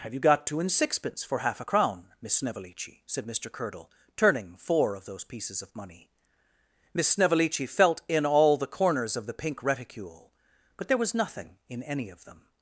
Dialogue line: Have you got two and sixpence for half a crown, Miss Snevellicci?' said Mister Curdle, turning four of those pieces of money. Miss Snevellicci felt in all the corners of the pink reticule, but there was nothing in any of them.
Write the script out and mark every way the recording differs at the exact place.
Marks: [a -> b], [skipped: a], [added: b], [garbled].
Have you got two and sixpence for half a crown, Miss Snevellicci?' said Mister Curdle, turning four of those pieces of money. Miss Snevellicci felt in all the corners of the pink reticule, but there was nothing in any of them.